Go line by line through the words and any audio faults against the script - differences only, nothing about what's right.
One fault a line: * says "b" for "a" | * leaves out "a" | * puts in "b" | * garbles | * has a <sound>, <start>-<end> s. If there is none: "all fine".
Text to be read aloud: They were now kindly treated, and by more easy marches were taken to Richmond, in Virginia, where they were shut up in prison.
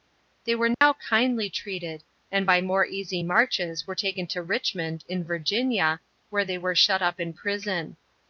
* has a dropout, 0.7-0.8 s